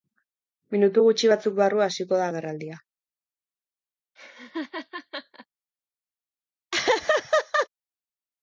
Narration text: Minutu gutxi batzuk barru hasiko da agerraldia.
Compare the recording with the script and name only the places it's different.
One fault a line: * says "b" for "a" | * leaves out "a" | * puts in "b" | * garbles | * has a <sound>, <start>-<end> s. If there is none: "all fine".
* has a laugh, 4.2-5.5 s
* has a laugh, 6.7-7.7 s